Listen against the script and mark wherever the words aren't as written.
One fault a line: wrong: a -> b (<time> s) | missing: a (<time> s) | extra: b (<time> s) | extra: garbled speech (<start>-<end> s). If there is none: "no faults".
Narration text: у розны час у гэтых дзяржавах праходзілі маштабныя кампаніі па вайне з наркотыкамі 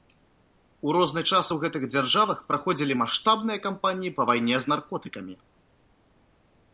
no faults